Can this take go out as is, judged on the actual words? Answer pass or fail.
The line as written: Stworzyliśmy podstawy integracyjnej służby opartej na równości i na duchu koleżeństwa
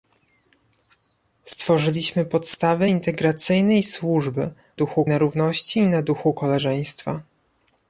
fail